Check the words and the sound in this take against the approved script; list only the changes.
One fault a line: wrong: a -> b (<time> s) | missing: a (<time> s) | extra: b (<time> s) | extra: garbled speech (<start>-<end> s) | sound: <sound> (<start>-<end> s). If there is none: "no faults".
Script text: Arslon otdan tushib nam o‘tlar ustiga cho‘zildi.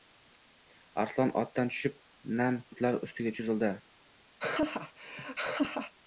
sound: laugh (4.4-5.9 s)